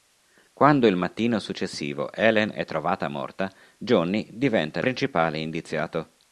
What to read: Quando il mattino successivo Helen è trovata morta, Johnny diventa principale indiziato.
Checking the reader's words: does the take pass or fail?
pass